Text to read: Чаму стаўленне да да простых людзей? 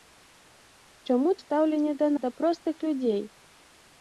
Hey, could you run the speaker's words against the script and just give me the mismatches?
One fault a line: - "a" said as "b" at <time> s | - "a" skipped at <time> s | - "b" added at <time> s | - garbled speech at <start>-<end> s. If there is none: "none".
none